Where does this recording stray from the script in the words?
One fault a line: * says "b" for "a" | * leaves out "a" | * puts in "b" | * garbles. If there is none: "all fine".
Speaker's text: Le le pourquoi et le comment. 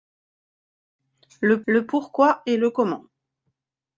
all fine